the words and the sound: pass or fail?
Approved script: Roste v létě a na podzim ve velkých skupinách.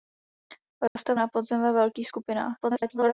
fail